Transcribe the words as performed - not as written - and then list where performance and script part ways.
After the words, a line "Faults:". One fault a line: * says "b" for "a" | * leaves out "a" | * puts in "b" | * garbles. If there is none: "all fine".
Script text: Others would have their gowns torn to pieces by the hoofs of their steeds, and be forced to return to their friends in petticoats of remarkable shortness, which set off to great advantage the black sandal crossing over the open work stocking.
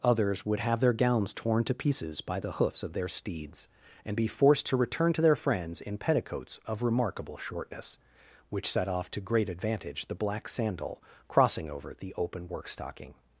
Others would have their gowns torn to pieces by the hoofs of their steeds, and be forced to return to their friends in petticoats of remarkable shortness, which set off to great advantage the black sandal crossing over the open work stocking.
Faults:
all fine